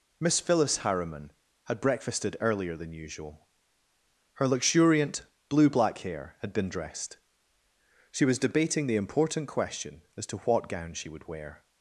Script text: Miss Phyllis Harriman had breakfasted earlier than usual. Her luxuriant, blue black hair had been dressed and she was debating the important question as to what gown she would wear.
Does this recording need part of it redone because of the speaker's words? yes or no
yes